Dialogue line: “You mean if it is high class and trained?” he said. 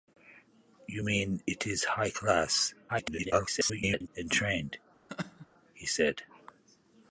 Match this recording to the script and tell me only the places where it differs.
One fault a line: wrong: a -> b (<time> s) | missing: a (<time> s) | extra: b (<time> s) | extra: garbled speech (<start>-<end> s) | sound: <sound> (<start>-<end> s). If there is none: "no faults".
missing: if (1.4 s)
extra: garbled speech (2.9-4.1 s)
sound: laugh (5.1-5.5 s)